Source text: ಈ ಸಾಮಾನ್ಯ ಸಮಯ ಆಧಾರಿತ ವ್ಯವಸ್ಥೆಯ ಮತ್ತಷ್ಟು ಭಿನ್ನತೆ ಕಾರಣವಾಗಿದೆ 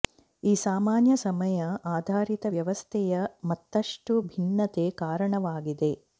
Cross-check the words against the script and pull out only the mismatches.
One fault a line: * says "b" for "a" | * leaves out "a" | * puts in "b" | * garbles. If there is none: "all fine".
all fine